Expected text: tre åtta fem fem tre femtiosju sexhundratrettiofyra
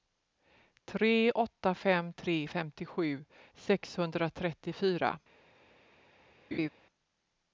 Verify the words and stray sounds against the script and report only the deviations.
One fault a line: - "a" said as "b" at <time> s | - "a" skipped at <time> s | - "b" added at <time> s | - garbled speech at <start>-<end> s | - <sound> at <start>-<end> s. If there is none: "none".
- "fem" skipped at 2.1 s
- laugh at 6.5-6.7 s